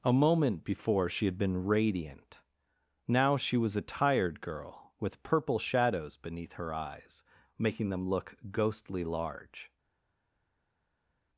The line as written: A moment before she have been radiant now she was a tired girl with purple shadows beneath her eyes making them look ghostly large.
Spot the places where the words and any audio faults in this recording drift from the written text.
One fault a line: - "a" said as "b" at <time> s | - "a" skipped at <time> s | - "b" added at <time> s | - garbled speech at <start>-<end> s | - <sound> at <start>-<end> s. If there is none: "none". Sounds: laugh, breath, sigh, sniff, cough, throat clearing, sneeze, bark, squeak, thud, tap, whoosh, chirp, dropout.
- "have" said as "had" at 1.3 s